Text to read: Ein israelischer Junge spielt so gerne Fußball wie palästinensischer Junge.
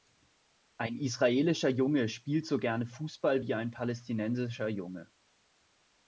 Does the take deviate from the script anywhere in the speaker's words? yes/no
yes